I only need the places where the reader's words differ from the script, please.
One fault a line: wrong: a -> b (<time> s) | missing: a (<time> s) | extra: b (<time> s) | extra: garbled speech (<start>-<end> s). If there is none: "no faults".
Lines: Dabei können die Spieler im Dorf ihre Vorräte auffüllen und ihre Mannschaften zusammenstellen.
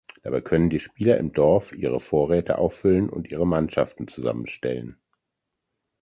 no faults